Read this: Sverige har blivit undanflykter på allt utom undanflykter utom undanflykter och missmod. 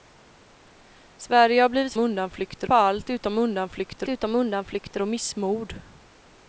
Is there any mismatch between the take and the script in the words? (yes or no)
no